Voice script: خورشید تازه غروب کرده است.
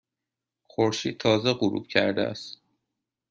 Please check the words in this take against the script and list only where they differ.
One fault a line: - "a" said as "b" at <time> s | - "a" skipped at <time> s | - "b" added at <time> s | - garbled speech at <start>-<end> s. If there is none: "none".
none